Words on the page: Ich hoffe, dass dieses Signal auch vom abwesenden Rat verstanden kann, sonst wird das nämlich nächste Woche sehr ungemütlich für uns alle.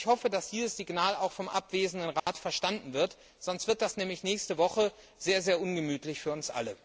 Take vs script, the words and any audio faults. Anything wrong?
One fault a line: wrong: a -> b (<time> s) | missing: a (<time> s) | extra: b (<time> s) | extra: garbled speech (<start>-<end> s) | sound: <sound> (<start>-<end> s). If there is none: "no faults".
sound: dropout (2.2-2.3 s)
wrong: kann -> wird (2.9 s)